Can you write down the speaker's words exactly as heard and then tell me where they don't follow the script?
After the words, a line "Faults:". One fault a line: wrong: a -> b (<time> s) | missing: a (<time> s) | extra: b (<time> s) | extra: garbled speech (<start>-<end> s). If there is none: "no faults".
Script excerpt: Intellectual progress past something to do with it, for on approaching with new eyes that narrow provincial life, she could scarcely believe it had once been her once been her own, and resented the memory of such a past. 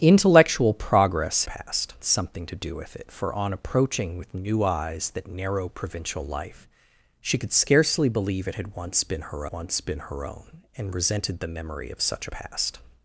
Intellectual progress past something to do with it, for on approaching with new eyes that narrow provincial life, she could scarcely believe it had once been her once been her own, and resented the memory of such a past.
Faults:
no faults